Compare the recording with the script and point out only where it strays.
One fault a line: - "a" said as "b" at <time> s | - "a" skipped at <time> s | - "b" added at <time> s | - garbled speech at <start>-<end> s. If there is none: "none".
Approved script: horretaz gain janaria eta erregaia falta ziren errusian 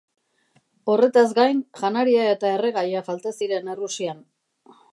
none